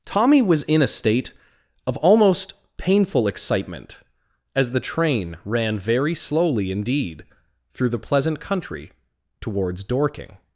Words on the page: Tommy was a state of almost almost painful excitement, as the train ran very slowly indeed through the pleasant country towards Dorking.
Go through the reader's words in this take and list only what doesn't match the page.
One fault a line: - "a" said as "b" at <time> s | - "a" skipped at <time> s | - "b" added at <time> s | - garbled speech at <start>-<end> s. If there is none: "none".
- "in" added at 0.6 s
- "almost" skipped at 2.5 s